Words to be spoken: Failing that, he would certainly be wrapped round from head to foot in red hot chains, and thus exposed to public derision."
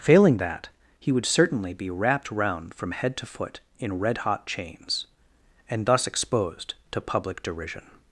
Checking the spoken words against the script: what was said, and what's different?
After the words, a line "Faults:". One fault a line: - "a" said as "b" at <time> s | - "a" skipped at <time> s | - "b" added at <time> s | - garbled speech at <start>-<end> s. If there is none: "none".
Failing that, he would certainly be wrapped round from head to foot in red hot chains, and thus exposed to public derision."
Faults:
none